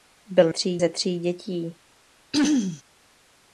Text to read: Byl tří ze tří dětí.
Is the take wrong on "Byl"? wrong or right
right